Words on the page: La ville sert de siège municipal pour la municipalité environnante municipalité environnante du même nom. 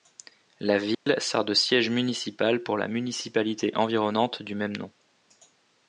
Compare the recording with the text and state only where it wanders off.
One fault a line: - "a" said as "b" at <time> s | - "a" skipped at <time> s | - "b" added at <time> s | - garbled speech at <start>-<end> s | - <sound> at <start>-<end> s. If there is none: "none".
- dropout at 0.9-1.1 s
- "municipalité environnante" skipped at 4.4 s